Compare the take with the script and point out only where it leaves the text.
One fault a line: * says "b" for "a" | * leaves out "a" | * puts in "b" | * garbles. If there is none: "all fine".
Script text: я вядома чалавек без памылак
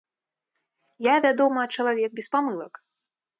all fine